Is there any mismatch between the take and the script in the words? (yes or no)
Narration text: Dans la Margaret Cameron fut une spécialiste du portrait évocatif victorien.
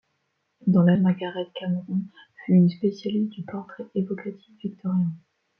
no